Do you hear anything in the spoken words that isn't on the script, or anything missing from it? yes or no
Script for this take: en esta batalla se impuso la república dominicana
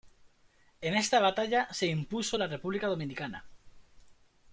no